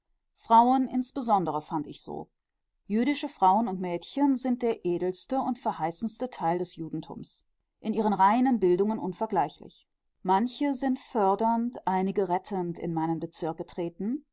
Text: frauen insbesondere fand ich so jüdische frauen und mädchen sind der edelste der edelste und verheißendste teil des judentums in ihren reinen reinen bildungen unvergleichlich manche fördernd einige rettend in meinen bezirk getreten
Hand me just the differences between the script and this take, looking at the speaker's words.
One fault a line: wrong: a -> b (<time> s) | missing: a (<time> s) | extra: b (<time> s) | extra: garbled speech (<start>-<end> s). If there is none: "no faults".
missing: der edelste (5.4 s)
missing: reinen (8.6 s)
extra: sind (10.7 s)